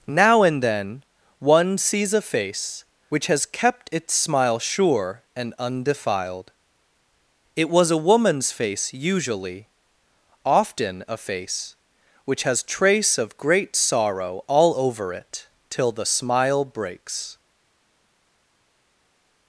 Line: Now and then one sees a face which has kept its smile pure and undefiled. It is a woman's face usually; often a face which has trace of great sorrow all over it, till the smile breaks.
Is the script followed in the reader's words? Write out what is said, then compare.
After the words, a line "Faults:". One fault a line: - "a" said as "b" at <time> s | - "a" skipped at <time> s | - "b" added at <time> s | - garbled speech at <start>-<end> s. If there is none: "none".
Now and then one sees a face which has kept its smile sure and undefiled. It was a woman's face usually; often a face which has trace of great sorrow all over it, till the smile breaks.
Faults:
- "pure" said as "sure" at 4.6 s
- "is" said as "was" at 7.7 s